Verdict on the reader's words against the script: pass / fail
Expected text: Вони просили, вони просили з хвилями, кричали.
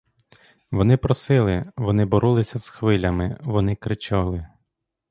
fail